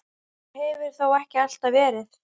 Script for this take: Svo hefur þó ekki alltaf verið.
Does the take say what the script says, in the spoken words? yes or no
yes